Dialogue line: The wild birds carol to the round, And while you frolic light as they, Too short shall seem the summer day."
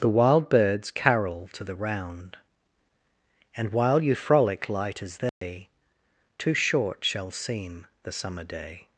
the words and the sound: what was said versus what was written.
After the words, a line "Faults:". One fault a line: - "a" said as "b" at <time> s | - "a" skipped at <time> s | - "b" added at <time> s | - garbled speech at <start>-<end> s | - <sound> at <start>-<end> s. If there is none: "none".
The wild birds carol to the round, And while you frolic light as they, Too short shall seem the summer day."
Faults:
- dropout at 5.3-5.4 s